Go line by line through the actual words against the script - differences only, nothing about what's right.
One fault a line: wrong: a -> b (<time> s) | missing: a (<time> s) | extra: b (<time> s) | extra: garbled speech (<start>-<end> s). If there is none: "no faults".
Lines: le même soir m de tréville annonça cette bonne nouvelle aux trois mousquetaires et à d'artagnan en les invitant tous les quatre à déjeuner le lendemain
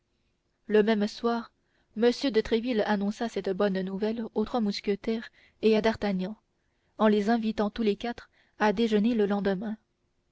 no faults